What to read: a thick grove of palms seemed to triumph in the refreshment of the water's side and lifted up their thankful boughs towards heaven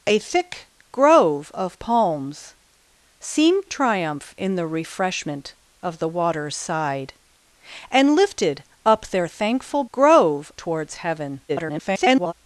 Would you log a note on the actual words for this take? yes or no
yes